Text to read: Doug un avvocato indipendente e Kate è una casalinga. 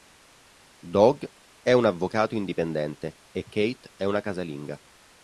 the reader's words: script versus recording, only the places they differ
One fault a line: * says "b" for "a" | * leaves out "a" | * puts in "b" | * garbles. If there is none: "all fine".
* puts in "è"